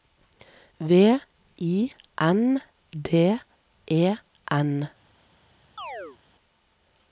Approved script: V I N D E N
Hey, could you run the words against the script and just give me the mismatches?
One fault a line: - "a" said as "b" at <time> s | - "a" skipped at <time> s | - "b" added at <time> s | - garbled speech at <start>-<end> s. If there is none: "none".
none